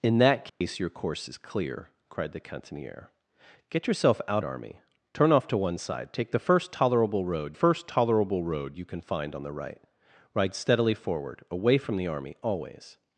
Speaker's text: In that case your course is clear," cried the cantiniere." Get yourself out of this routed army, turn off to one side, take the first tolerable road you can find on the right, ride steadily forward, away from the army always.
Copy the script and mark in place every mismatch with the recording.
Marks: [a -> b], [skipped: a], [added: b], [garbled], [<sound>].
In that case [dropout] your course is clear," cried the cantiniere." Get yourself out [skipped: of this routed] army, turn off to one side, take the first tolerable road [added: first tolerable road] you can find on the right, ride steadily forward, away from the army always.